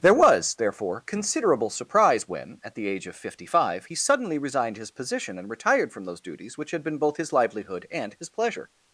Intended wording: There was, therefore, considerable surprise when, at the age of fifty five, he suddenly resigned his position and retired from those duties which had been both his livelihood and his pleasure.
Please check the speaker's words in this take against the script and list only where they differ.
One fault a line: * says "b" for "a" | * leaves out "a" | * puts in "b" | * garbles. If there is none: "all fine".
all fine